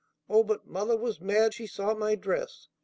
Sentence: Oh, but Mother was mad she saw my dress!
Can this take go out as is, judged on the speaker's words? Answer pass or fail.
pass